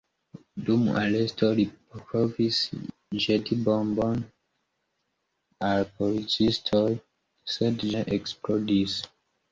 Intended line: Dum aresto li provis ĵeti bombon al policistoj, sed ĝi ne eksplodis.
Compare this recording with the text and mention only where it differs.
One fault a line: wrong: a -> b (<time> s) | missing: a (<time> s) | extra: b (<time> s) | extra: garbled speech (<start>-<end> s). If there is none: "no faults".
missing: ĝi (7.9 s)